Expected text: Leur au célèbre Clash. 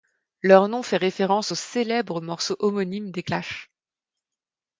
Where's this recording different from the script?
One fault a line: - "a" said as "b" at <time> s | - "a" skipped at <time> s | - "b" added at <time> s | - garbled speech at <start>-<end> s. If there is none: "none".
- "nom fait référence" added at 0.7 s
- "morceau homonyme des" added at 2.2 s